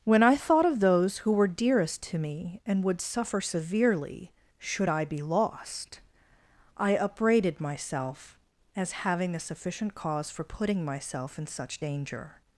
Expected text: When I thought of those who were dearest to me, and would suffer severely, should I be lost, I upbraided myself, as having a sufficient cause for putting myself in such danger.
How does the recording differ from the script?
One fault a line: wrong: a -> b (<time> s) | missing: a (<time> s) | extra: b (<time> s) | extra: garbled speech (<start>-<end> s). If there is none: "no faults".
no faults